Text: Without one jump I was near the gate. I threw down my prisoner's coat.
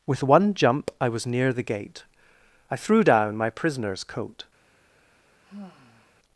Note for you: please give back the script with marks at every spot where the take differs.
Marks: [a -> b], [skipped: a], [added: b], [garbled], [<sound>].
[Without -> With] one jump I was near the gate. I threw down my prisoner's coat. [sigh]